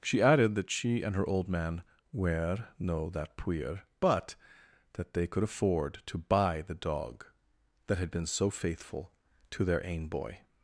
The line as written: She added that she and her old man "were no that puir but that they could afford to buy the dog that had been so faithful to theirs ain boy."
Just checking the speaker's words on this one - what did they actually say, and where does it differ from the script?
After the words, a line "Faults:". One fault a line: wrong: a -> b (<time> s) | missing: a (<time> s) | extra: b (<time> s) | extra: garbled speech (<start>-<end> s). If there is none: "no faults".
She added that she and her old man "were no that puir but that they could afford to buy the dog that had been so faithful to their ain boy."
Faults:
wrong: theirs -> their (9.6 s)